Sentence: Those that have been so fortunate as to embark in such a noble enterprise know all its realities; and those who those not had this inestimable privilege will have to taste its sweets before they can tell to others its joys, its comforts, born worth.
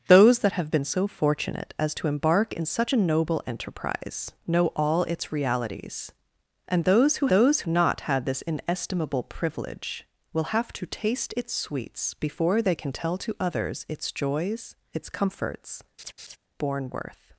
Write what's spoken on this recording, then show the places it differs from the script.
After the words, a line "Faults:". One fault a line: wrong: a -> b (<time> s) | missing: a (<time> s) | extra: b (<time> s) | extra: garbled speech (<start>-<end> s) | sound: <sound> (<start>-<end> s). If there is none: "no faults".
Those that have been so fortunate as to embark in such a noble enterprise know all its realities; and those who those not had this inestimable privilege will have to taste its sweets before they can tell to others its joys, its comforts, born worth.
Faults:
sound: laugh (16.0-16.4 s)